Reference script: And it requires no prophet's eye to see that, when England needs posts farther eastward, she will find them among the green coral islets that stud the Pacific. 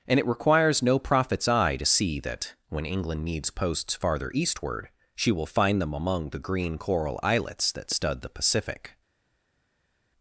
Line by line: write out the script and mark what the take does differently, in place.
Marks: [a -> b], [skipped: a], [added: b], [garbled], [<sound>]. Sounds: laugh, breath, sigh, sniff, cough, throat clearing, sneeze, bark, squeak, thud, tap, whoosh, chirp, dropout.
And it requires no prophet's eye to see that, when England needs posts farther eastward, she will find them among the green coral islets that stud the Pacific.